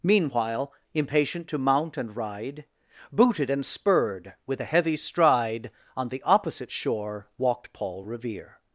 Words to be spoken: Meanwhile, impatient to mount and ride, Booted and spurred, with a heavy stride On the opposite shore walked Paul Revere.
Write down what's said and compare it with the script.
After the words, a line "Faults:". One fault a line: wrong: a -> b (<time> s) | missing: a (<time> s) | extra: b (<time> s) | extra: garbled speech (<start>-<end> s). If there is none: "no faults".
Meanwhile, impatient to mount and ride, Booted and spurred, with a heavy stride On the opposite shore walked Paul Revere.
Faults:
no faults